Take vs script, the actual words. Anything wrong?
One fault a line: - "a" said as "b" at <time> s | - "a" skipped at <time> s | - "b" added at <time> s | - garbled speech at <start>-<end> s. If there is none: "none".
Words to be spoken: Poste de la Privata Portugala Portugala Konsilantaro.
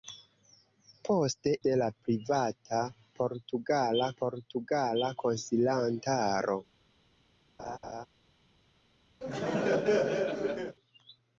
none